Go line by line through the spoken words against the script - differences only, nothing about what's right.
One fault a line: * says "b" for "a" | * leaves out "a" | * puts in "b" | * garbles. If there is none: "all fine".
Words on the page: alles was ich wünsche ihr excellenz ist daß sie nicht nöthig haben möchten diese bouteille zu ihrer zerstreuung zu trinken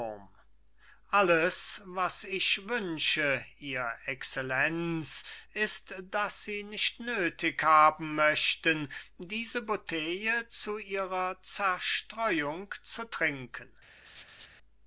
all fine